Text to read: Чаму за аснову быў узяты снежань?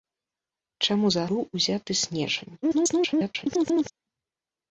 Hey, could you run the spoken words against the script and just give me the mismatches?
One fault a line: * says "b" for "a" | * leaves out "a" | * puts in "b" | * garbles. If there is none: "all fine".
* leaves out "аснову"
* garbles